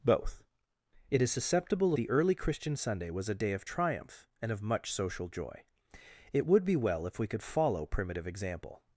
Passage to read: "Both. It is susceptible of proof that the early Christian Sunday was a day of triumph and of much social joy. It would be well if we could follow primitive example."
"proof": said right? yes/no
no